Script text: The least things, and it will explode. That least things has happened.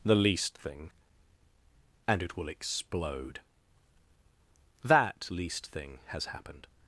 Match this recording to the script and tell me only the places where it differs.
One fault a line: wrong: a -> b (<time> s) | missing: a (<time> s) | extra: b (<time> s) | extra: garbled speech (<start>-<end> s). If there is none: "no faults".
wrong: things -> thing (0.6 s)
wrong: things -> thing (5.7 s)